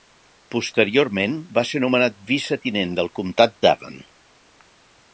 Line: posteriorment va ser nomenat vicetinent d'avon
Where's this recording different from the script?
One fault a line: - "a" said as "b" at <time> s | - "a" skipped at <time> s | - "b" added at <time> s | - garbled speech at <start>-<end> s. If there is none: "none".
- "del comtat" added at 3.0 s